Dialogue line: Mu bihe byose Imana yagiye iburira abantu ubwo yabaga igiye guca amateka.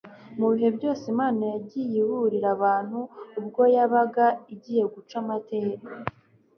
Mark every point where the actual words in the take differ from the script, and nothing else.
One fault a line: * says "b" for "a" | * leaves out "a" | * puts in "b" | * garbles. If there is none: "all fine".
all fine